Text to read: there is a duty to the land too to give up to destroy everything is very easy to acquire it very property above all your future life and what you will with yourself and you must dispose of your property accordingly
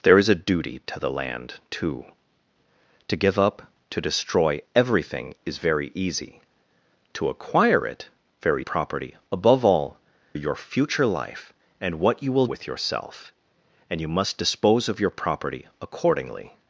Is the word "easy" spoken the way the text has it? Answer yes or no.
yes